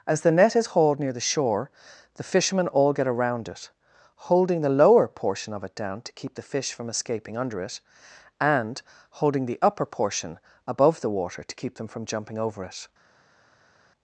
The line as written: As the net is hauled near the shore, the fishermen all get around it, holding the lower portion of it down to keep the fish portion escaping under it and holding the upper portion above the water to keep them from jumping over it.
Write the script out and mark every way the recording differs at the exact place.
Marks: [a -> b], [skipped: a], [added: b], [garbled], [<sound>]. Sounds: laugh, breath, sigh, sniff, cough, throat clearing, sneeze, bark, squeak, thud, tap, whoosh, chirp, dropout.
As the net is hauled near the shore, the fishermen all get around it, holding the lower portion of it down to keep the fish [portion -> from] escaping under it and holding the upper portion above the water to keep them from jumping over it.